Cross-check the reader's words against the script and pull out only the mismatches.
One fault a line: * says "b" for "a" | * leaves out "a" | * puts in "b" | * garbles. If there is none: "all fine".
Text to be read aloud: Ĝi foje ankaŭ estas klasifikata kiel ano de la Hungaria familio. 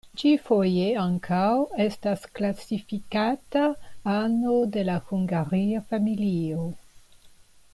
* leaves out "kiel"